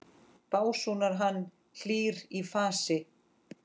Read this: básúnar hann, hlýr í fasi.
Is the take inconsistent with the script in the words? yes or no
no